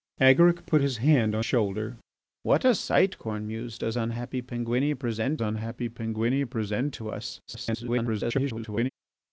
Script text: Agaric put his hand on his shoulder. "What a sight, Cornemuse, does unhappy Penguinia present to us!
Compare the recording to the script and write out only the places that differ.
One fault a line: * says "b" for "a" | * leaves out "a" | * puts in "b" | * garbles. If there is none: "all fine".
* leaves out "his"
* puts in "unhappy Penguinia present"
* garbles